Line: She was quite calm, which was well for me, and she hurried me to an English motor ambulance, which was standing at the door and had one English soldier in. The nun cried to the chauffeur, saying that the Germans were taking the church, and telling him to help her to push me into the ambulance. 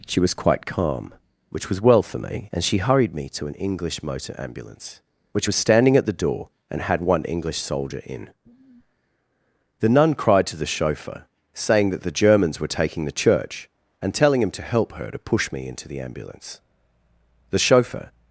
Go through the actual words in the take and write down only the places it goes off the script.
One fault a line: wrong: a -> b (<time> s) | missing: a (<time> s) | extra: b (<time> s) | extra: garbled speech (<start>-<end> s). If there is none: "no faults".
extra: The chauffeur (17.5 s)